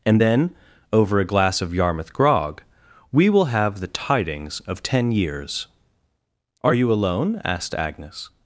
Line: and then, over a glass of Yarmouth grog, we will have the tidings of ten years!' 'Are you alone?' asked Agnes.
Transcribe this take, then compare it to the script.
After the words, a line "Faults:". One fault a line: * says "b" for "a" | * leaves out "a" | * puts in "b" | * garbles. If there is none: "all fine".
and then, over a glass of Yarmouth grog, we will have the tidings of ten years!' 'Are you alone?' asked Agnes.
Faults:
all fine